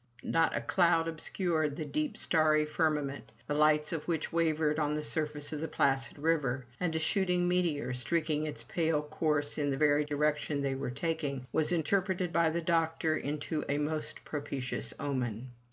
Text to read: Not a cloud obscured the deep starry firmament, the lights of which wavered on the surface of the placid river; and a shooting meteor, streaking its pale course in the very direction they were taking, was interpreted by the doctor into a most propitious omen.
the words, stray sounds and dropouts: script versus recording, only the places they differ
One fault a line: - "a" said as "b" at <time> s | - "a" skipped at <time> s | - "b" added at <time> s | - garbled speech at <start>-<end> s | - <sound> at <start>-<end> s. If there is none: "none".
none